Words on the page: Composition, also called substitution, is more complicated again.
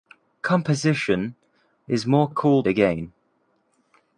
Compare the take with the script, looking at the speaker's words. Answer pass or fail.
fail